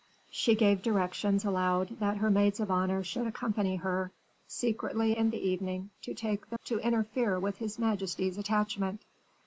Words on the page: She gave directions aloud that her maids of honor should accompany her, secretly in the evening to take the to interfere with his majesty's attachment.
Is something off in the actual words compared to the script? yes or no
no